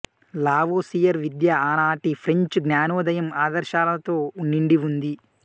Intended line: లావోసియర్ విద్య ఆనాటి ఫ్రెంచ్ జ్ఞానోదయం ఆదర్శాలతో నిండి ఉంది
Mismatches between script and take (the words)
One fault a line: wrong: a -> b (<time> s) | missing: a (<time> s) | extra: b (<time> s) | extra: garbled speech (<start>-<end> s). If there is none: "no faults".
no faults